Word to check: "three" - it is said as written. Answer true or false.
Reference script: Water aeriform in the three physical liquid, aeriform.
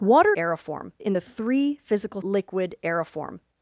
true